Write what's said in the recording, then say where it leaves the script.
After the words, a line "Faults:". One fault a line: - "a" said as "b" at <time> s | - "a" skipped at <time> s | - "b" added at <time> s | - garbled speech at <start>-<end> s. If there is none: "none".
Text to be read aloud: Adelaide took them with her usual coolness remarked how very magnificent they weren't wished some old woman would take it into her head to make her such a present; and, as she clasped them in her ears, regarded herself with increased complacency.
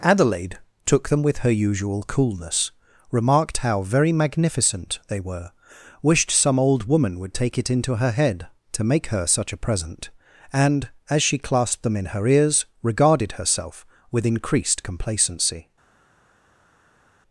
Adelaide took them with her usual coolness remarked how very magnificent they were wished some old woman would take it into her head to make her such a present; and, as she clasped them in her ears, regarded herself with increased complacency.
Faults:
- "weren't" said as "were" at 5.2 s